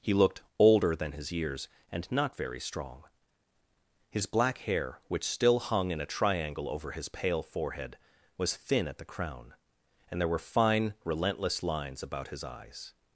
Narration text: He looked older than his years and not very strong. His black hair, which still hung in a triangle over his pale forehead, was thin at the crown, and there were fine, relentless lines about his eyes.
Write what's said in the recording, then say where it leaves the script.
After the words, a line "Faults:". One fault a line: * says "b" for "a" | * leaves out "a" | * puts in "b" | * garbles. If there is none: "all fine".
He looked older than his years and not very strong. His black hair, which still hung in a triangle over his pale forehead, was thin at the crown, and there were fine, relentless lines about his eyes.
Faults:
all fine